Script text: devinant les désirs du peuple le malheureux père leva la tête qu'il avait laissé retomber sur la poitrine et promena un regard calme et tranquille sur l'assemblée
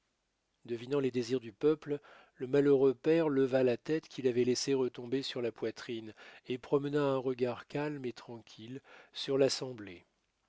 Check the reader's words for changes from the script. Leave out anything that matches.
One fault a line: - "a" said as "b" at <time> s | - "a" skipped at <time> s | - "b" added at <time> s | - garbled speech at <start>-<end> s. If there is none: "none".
none